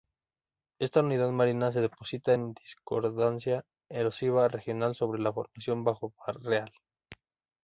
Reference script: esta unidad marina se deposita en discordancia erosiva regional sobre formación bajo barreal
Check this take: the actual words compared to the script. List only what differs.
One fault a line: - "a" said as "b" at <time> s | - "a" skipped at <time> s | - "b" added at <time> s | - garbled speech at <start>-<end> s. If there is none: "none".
- "la" added at 5.2 s